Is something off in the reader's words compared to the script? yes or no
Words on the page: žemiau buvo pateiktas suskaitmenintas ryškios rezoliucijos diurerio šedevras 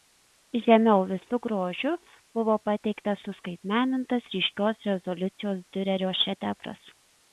yes